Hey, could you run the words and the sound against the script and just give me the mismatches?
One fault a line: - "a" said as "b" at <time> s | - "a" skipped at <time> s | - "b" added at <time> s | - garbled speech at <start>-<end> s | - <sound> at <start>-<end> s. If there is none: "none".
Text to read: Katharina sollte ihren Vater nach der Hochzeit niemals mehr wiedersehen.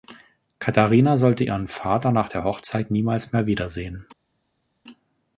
none